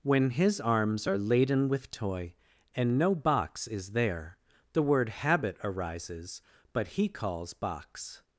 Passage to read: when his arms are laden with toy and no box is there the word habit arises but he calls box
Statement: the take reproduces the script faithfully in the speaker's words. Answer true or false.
true